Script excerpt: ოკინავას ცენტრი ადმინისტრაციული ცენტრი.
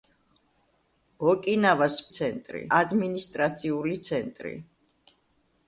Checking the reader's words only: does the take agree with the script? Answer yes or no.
yes